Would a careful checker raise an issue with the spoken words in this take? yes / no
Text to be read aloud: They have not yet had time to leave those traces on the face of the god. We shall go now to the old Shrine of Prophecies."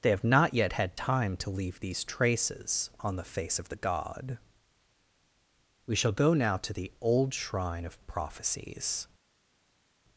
yes